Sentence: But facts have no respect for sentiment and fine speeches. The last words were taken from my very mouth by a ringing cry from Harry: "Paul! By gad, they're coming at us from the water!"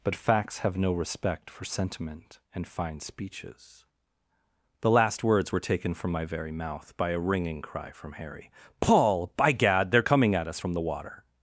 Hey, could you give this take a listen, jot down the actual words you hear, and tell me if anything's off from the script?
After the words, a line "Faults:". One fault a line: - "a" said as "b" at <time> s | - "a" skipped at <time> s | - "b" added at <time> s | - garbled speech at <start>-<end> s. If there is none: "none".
But facts have no respect for sentiment and fine speeches. The last words were taken from my very mouth by a ringing cry from Harry: "Paul! By gad, they're coming at us from the water!"
Faults:
none